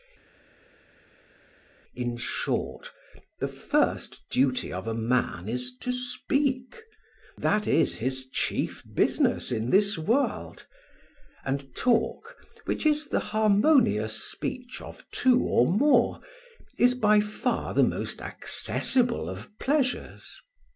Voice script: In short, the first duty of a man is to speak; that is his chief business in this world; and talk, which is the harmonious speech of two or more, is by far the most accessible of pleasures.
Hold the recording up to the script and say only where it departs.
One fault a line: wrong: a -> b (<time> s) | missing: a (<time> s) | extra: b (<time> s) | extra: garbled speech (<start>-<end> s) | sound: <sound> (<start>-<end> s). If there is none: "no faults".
no faults